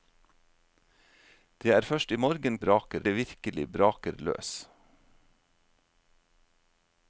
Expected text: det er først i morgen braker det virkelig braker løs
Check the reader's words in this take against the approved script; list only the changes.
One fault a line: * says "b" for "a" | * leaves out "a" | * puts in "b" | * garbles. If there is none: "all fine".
all fine